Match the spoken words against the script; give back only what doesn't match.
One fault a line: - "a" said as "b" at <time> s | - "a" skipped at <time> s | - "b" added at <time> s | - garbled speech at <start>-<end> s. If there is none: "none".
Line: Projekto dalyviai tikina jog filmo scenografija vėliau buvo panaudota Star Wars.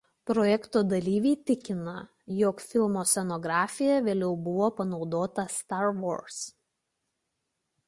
none